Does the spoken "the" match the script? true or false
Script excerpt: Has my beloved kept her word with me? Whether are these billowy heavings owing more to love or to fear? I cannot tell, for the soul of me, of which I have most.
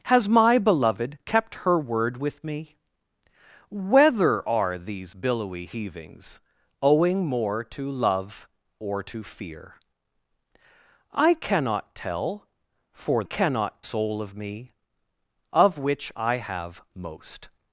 false